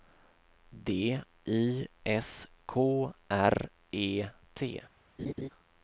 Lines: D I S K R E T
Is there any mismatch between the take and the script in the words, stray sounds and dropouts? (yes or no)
yes